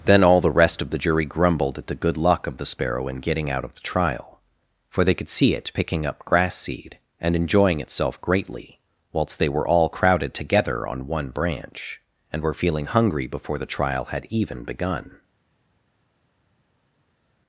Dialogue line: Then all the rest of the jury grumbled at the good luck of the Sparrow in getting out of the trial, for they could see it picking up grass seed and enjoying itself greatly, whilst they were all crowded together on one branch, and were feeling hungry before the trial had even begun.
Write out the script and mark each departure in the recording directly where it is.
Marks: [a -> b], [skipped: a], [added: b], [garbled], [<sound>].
Then all the rest of the jury grumbled at the good luck of the Sparrow in getting out of the trial, for they could see it picking up grass seed and enjoying itself greatly, whilst they were all crowded together on one branch, and were feeling hungry before the trial had even begun.